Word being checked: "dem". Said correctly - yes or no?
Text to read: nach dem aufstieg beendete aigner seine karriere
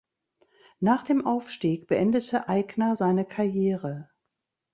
yes